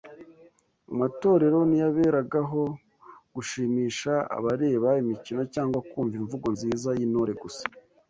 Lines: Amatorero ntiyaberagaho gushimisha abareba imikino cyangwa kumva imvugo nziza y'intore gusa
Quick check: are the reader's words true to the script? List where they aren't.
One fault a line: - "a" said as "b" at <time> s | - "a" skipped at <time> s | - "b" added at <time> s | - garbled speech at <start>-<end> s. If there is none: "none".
none